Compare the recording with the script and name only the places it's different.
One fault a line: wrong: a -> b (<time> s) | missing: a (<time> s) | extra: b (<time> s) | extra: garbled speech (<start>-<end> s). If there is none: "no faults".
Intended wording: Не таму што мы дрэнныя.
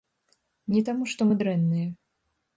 no faults